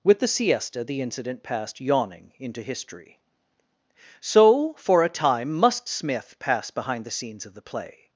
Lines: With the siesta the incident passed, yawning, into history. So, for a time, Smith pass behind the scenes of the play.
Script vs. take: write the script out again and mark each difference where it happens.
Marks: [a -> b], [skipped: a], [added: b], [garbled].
With the siesta the incident passed, yawning, into history. So, for a time, [added: must] Smith pass behind the scenes of the play.